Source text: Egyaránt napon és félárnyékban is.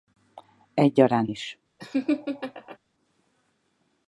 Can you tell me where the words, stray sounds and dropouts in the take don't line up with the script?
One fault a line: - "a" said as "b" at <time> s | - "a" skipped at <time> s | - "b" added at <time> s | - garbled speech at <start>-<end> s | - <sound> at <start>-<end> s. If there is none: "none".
- "napon és félárnyékban" skipped at 1.3 s
- laugh at 1.8-2.8 s